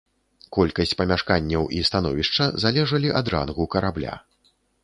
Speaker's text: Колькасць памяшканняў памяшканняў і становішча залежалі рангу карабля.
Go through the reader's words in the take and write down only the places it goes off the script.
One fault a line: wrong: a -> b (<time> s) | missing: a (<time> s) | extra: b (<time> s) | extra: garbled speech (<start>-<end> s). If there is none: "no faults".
missing: памяшканняў (1.7 s)
extra: ад (3.2 s)